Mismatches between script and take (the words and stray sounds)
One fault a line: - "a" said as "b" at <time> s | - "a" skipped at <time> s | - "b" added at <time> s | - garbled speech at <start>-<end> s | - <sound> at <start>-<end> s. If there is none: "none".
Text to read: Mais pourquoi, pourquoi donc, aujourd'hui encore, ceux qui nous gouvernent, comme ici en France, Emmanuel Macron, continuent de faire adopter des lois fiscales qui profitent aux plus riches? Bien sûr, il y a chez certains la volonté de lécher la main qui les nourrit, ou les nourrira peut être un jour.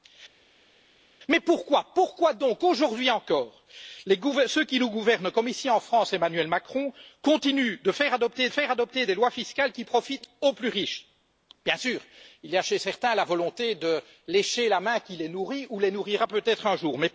- "faire adopter" added at 8.5 s